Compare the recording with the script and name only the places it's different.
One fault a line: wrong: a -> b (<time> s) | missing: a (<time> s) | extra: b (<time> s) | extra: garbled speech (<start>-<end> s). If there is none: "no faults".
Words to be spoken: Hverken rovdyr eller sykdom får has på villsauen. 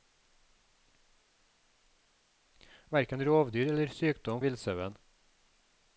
missing: får has på (4.4 s)